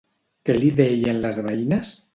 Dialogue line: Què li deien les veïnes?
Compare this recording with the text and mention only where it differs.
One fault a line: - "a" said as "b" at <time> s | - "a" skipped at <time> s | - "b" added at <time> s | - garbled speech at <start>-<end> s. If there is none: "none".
none